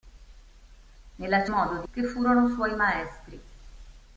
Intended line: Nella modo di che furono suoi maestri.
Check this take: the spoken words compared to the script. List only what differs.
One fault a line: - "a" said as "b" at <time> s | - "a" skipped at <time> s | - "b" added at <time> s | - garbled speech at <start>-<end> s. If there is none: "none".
none